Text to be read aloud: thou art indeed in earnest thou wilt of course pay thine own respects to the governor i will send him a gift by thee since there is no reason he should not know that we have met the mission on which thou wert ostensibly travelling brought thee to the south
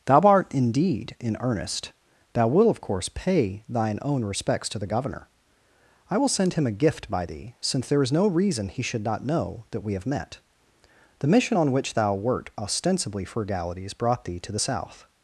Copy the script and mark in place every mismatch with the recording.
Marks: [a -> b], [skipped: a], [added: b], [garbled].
thou art indeed in earnest thou wilt of course pay thine own respects to the governor i will send him a gift by thee since there is no reason he should not know that we have met the mission on which thou wert ostensibly [travelling -> frugalities] brought thee to the south